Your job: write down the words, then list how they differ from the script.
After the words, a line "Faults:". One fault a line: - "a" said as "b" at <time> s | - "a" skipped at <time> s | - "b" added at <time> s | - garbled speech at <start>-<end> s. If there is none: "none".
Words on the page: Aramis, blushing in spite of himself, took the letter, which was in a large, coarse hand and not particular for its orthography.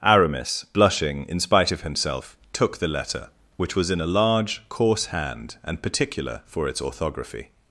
Aramis, blushing in spite of himself, took the letter, which was in a large, coarse hand and particular for its orthography.
Faults:
- "not" skipped at 5.8 s